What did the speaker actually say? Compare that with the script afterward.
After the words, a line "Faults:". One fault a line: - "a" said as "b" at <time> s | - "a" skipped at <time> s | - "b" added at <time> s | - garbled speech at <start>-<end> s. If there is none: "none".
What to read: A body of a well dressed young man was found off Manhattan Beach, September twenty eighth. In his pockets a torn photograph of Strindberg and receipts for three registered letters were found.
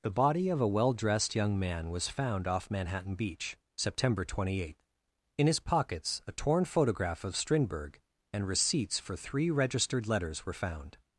The body of a well dressed young man was found off Manhattan Beach, September twenty eighth. In his pockets a torn photograph of Strindberg and receipts for three registered letters were found.
Faults:
- "A" said as "The" at 0.0 s